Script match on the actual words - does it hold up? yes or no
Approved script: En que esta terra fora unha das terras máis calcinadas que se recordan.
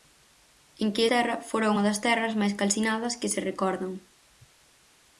no